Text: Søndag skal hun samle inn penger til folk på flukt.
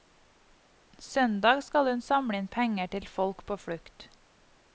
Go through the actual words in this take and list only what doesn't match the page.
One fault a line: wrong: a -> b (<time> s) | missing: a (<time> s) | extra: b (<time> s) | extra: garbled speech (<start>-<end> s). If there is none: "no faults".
no faults